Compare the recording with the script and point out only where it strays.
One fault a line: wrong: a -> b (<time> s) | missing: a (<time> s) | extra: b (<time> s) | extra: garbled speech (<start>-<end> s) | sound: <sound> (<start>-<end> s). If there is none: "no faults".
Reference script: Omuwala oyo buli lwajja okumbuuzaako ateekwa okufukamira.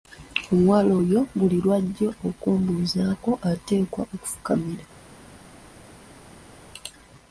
no faults